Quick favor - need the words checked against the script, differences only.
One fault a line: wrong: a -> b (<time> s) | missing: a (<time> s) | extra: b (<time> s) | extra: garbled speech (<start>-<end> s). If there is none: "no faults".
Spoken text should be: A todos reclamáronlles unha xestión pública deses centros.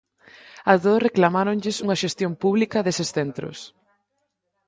no faults